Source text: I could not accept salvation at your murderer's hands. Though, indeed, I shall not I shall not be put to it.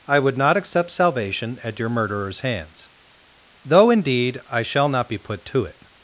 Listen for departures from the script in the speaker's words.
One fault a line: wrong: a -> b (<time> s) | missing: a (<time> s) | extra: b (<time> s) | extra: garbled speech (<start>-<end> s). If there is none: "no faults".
wrong: could -> would (0.2 s)
missing: I shall not (5.1 s)